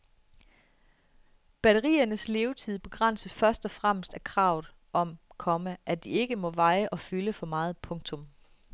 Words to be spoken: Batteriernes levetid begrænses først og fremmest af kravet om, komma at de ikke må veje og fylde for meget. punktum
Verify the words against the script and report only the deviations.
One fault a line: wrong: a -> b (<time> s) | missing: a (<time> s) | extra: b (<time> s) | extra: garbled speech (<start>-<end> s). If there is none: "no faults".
no faults